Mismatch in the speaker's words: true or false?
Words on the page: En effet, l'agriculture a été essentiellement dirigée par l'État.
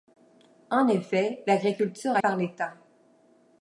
true